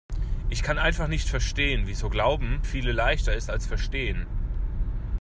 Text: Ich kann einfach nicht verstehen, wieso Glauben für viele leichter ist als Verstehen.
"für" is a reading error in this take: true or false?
true